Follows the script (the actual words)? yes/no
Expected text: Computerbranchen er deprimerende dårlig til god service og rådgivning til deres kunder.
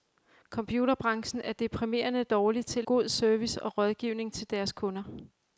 yes